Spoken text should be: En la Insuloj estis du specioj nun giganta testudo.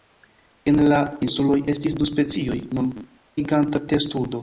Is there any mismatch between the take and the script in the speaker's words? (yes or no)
no